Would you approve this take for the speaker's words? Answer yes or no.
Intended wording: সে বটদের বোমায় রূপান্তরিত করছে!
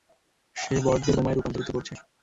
yes